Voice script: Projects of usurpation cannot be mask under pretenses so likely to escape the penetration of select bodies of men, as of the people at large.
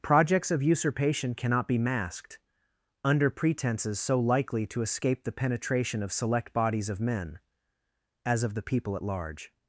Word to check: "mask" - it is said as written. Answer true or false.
false